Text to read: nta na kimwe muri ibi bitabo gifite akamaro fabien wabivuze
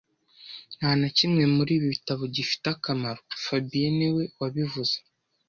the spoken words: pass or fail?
fail